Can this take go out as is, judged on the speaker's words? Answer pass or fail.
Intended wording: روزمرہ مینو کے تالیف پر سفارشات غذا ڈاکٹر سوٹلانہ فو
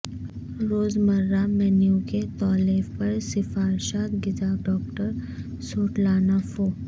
pass